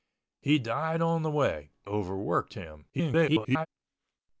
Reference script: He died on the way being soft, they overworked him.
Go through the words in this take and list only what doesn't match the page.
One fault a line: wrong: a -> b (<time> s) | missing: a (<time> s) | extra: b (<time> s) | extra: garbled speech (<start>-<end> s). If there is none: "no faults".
missing: being soft they (1.7 s)
extra: garbled speech (2.9-3.7 s)